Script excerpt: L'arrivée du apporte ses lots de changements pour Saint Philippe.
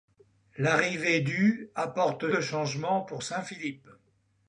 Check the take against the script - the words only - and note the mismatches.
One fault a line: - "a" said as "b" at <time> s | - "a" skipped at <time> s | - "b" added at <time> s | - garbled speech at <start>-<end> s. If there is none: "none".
- "ses lots" skipped at 2.3 s